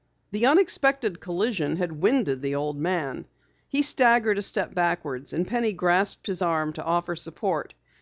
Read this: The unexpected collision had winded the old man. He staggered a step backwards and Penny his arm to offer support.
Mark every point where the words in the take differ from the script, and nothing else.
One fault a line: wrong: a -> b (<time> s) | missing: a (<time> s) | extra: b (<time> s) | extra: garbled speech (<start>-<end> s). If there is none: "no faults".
extra: grasped (5.7 s)